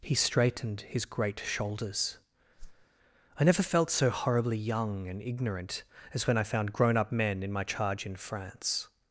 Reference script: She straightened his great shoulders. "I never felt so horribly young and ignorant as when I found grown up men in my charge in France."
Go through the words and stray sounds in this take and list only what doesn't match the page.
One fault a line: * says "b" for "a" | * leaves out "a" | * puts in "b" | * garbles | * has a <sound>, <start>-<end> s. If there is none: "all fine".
* says "He" for "She"
* has a whoosh, 2.6-2.9 s